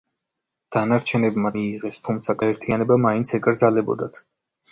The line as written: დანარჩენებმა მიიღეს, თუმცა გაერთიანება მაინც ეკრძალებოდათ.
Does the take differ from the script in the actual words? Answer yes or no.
no